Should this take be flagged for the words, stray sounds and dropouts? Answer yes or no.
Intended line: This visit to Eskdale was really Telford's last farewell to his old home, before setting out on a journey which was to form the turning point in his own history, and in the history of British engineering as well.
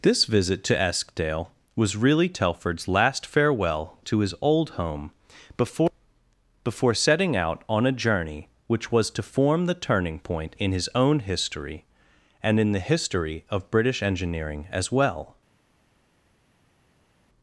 yes